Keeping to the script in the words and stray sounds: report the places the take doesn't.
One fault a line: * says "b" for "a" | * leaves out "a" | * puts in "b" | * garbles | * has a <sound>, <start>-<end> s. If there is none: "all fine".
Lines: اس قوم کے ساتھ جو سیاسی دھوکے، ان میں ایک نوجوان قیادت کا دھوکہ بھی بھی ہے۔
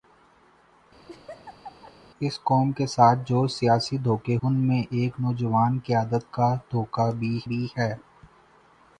* has a laugh, 1.1-2.0 s